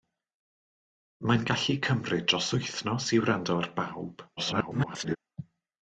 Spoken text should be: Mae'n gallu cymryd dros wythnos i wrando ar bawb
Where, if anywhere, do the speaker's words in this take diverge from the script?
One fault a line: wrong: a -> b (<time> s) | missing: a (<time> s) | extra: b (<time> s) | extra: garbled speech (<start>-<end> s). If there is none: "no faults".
extra: garbled speech (4.4-5.2 s)